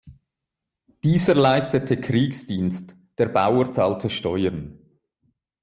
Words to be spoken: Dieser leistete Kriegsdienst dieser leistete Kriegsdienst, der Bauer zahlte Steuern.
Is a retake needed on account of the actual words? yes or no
yes